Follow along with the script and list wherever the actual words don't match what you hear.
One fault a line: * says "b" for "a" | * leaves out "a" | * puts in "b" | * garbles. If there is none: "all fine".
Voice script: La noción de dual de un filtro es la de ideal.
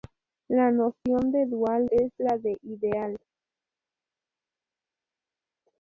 * leaves out "de un filtro"